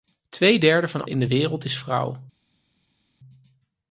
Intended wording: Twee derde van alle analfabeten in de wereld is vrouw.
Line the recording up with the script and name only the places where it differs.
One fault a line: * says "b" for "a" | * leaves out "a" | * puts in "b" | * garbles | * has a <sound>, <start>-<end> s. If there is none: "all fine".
* leaves out "alle analfabeten"